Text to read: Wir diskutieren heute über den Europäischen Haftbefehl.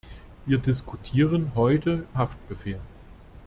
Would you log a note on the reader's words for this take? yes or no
yes